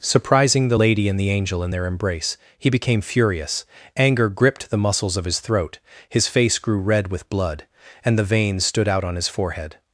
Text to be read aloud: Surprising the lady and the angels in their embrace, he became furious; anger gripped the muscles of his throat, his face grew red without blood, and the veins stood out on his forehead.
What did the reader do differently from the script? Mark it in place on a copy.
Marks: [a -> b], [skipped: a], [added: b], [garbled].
Surprising the lady and the [angels -> angel] in their embrace, he became furious; anger gripped the muscles of his throat, his face grew red [without -> with] blood, and the veins stood out on his forehead.